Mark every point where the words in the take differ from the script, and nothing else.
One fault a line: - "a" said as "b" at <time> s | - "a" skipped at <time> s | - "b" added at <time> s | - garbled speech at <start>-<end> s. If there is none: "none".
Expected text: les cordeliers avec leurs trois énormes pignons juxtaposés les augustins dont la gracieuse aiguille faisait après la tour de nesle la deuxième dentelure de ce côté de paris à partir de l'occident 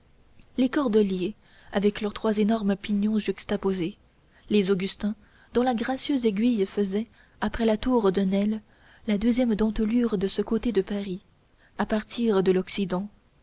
none